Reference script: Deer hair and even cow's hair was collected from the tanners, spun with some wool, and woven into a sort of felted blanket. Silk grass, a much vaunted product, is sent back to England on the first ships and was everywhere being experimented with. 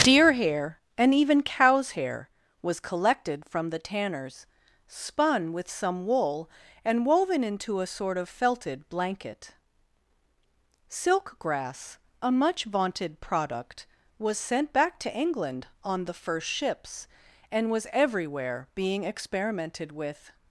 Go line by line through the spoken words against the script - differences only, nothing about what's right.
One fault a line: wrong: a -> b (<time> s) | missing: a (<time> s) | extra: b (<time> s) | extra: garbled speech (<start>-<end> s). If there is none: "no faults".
wrong: is -> was (14.2 s)